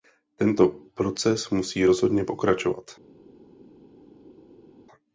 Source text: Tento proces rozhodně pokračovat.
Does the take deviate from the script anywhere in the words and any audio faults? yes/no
yes